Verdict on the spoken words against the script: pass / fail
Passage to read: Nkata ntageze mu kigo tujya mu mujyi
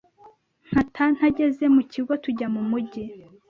pass